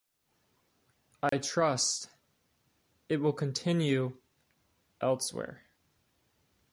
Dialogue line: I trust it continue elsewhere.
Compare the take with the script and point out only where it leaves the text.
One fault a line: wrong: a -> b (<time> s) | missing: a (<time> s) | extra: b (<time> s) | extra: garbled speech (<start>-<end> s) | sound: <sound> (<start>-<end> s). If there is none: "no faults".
sound: dropout (1.3-1.3 s)
extra: will (3.2 s)